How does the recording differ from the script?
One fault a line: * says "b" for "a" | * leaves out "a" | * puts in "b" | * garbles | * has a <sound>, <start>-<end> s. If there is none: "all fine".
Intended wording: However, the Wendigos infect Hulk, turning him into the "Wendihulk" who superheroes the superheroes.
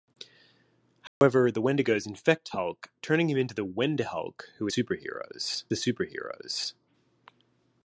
* has a dropout, 1.1-1.2 s